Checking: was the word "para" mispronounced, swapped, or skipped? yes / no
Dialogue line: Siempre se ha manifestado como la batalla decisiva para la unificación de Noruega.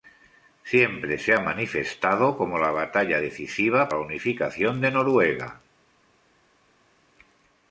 yes